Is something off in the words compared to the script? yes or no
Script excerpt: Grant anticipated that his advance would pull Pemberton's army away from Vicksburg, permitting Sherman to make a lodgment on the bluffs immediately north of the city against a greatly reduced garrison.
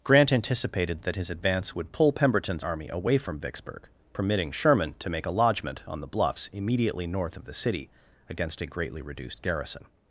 no